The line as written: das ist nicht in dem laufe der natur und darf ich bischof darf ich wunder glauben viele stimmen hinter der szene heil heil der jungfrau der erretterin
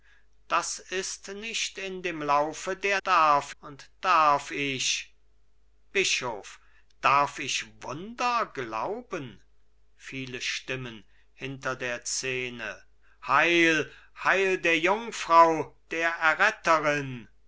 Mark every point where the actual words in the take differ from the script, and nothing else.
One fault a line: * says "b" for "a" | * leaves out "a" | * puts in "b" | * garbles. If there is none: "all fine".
* says "darf" for "natur"